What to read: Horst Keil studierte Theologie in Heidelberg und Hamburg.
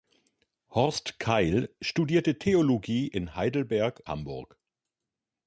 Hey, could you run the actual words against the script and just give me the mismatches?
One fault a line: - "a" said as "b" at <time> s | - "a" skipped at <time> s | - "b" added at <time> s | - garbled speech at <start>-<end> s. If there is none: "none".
- "und" skipped at 4.0 s